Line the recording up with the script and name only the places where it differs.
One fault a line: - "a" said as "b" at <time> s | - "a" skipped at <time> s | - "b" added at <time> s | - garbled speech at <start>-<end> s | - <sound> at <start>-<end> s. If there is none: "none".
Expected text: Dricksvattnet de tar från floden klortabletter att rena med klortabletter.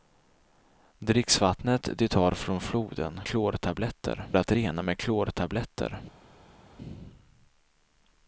none